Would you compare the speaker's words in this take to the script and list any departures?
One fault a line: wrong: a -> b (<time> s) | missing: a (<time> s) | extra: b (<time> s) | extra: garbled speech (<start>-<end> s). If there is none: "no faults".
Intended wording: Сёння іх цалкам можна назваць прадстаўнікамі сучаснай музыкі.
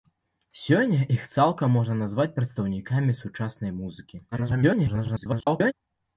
extra: garbled speech (4.3-5.7 s)